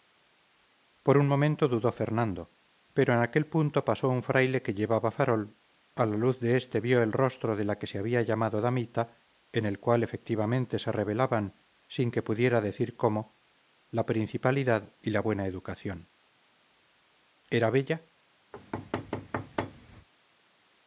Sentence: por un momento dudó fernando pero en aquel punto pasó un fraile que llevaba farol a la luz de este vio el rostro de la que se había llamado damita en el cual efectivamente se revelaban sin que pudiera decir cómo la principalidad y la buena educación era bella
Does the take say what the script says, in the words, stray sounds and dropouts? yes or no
no